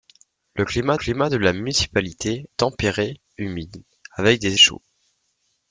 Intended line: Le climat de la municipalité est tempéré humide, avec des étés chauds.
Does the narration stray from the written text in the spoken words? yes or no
yes